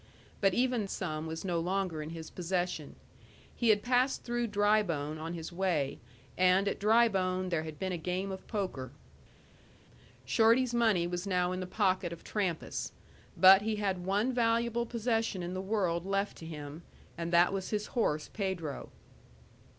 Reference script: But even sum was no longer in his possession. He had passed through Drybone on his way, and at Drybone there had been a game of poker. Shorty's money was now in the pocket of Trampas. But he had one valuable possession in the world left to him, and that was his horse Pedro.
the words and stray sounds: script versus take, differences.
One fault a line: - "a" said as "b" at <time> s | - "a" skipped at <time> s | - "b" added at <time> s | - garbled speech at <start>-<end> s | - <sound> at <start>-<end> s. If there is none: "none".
none